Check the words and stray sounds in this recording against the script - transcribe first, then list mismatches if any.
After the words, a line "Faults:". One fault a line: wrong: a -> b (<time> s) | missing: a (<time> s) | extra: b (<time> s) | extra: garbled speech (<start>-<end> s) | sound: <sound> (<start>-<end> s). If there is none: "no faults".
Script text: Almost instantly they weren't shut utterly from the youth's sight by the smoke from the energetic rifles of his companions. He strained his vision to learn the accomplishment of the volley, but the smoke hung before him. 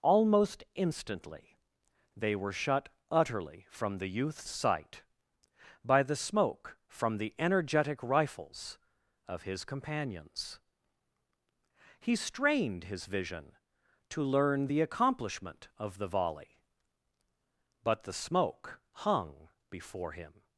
Almost instantly they were shut utterly from the youth's sight by the smoke from the energetic rifles of his companions. He strained his vision to learn the accomplishment of the volley, but the smoke hung before him.
Faults:
wrong: weren't -> were (2.4 s)